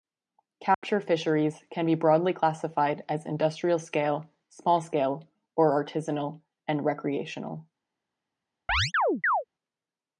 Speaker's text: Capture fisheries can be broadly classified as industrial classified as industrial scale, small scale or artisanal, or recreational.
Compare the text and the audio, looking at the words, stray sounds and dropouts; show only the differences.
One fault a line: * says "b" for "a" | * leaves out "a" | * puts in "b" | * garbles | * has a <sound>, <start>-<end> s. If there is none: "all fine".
* has a dropout, 0.7-0.8 s
* leaves out "classified as industrial"
* says "and" for "or"
* has a chirp, 8.7-9.4 s